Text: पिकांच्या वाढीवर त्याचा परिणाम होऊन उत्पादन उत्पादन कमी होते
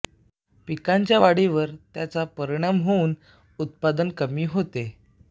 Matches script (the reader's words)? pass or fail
fail